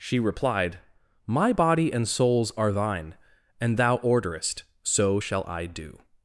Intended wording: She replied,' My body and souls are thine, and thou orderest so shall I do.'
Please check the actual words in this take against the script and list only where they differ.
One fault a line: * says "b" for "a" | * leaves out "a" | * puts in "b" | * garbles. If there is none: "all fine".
all fine